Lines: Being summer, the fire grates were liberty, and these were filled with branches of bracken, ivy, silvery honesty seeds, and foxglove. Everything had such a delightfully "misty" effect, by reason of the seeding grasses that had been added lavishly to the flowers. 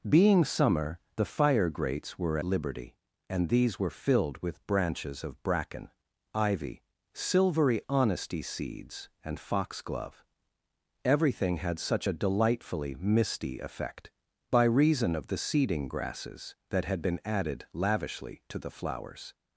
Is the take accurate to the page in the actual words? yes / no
yes